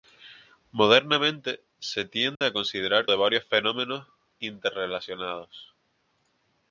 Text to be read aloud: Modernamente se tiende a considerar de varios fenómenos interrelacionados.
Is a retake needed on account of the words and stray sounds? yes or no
yes